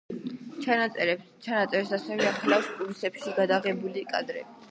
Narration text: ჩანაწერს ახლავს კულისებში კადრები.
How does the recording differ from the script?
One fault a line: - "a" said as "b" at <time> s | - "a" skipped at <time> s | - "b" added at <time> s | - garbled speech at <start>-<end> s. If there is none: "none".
- "ასევე" added at 2.0 s
- "გადაღებული" added at 3.4 s